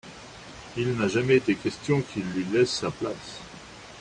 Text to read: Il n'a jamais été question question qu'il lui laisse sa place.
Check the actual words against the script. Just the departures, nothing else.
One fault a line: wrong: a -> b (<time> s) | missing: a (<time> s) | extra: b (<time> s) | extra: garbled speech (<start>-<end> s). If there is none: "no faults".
missing: question (2.0 s)